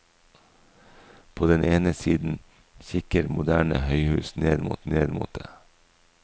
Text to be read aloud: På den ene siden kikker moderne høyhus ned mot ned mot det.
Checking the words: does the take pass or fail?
pass